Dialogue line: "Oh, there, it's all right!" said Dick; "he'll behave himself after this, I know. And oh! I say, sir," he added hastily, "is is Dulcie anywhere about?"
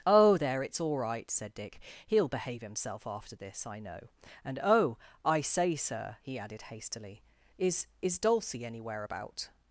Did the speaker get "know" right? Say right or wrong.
right